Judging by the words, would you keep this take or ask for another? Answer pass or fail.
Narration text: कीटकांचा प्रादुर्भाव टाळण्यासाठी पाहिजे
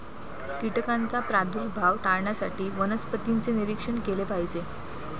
fail